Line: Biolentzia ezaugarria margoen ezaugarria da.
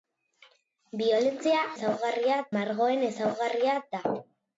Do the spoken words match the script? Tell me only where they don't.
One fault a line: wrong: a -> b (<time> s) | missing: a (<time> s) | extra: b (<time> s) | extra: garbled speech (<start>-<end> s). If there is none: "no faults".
no faults